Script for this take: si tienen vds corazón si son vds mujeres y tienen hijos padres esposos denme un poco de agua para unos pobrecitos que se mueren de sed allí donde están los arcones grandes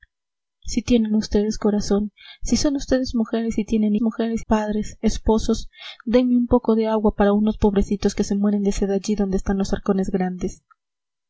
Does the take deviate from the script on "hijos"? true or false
true